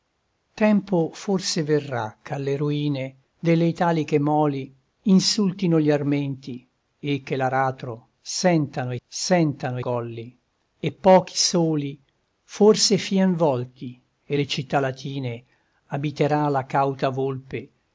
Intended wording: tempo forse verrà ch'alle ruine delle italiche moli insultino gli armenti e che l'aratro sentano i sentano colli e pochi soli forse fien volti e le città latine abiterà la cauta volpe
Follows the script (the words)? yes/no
yes